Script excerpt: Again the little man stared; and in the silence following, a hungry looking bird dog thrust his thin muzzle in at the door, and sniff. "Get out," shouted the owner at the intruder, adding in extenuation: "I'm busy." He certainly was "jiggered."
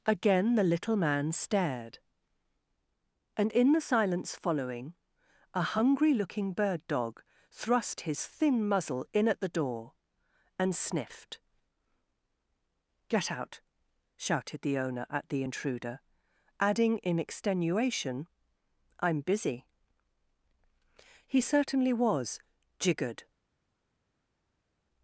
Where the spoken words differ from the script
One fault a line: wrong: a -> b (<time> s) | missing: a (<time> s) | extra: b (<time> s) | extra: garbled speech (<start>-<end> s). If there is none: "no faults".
wrong: sniff -> sniffed (10.8 s)